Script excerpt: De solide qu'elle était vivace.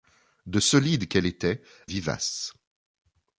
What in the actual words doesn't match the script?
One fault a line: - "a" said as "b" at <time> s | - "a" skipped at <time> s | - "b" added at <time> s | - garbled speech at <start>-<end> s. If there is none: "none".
none